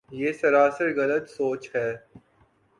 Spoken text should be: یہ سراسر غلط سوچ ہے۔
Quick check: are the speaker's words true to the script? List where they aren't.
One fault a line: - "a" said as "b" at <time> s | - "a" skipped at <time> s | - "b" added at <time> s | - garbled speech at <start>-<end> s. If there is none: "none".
none